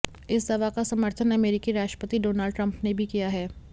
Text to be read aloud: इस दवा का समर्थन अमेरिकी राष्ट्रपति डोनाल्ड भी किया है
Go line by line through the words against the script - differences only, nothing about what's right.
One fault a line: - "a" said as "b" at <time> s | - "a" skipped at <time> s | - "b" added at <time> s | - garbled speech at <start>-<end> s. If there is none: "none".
- "ट्रंप ने" added at 2.5 s